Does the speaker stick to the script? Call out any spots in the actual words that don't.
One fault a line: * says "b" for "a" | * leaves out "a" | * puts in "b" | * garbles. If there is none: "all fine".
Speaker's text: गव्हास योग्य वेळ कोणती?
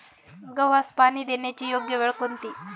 * puts in "पाणी देण्याची"